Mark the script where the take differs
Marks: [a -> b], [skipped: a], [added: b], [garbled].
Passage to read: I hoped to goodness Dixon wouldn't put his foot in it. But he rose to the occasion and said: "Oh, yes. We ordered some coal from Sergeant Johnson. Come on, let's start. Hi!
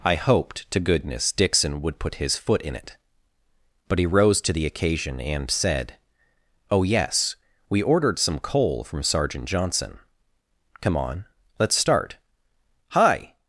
I hoped to goodness Dixon [wouldn't -> would] put his foot in it. But he rose to the occasion and said: "Oh, yes. We ordered some coal from Sergeant Johnson. Come on, let's start. Hi!